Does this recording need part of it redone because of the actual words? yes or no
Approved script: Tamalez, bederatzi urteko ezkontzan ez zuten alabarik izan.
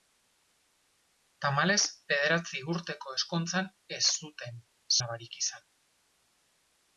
no